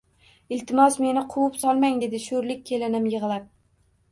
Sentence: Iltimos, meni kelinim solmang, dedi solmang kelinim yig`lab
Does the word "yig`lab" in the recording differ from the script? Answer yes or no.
no